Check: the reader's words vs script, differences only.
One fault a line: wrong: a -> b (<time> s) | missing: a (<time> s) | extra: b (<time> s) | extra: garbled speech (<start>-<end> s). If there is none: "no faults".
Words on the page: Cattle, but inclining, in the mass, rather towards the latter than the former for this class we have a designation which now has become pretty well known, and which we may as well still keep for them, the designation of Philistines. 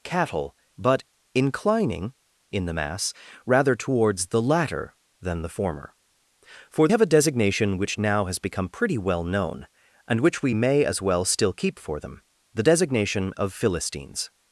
missing: this class we (6.9 s)